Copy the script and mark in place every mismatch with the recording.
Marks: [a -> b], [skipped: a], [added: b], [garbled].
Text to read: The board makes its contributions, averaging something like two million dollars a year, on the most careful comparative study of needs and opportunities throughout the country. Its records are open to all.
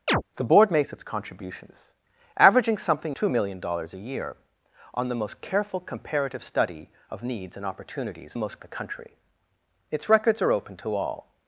The board makes its contributions, averaging something [skipped: like] two million dollars a year, on the most careful comparative study of needs and opportunities [throughout -> most] the country. Its records are open to all.